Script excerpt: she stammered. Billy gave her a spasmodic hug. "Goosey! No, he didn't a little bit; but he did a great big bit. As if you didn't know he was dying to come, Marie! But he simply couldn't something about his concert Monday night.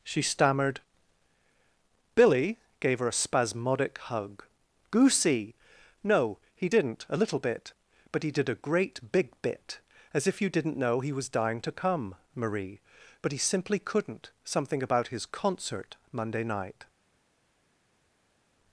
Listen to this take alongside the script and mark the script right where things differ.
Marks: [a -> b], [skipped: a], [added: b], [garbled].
she stammered. Billy gave her a spasmodic hug. "Goosey! No, he didn't a little bit; but he did a great big bit. As if you didn't know he was dying to come, Marie! But he simply couldn't something about his concert Monday night.